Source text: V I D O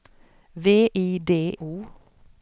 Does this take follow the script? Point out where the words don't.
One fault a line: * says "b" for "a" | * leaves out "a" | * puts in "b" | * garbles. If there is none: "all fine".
all fine